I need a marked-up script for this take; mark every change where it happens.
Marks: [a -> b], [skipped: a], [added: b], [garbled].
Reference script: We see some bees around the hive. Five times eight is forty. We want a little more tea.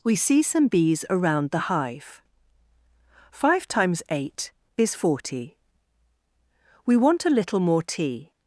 We see some bees around the hive. Five times eight is forty. We want a little more tea.